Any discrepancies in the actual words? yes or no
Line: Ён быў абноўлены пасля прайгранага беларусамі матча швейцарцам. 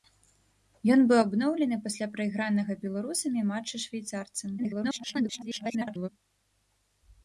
yes